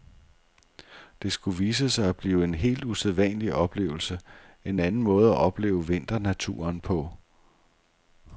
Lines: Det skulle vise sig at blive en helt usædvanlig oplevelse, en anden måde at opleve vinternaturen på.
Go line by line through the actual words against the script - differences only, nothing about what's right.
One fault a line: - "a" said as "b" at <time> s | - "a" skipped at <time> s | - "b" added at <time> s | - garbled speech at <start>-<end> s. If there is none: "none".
none